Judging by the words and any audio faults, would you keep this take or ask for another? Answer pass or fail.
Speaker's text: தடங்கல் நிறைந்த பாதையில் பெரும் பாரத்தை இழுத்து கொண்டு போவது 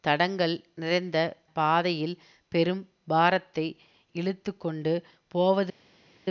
pass